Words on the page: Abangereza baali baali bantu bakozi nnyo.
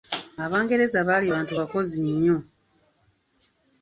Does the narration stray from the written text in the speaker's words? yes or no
yes